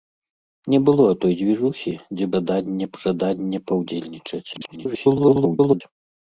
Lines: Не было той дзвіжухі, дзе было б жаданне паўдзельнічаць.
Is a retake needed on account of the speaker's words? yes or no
yes